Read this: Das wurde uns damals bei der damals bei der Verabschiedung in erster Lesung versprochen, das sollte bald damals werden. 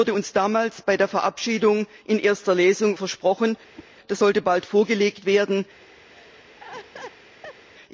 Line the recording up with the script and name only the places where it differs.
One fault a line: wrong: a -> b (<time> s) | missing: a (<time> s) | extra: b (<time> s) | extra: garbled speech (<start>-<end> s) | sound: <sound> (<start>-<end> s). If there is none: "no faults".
missing: damals bei der (1.1 s)
sound: whoosh (3.8-3.9 s)
wrong: damals -> vorgelegt (4.7 s)
sound: laugh (6.1-7.6 s)